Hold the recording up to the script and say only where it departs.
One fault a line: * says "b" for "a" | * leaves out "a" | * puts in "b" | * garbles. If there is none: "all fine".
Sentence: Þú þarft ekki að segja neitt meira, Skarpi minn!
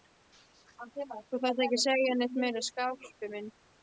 all fine